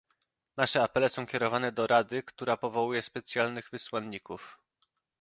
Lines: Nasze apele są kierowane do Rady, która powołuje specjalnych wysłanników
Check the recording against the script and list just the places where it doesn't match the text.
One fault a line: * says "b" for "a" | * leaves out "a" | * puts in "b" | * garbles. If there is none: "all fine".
all fine